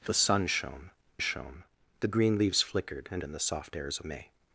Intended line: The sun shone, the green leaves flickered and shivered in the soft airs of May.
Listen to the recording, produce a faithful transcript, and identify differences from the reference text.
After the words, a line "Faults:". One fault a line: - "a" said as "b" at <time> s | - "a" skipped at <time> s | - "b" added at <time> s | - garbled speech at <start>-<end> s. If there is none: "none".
The sun shone shone, the green leaves flickered and in the soft airs May.
Faults:
- "shone" added at 1.2 s
- "shivered" skipped at 3.2 s
- "of" skipped at 4.0 s